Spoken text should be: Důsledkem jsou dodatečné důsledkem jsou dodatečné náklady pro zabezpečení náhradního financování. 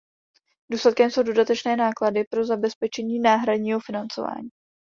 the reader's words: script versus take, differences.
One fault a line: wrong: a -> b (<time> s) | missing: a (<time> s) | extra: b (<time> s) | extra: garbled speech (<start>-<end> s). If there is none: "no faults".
missing: důsledkem jsou dodatečné (1.8 s)